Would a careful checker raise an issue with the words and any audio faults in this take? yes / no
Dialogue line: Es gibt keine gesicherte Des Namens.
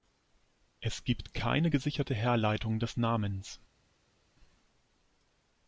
yes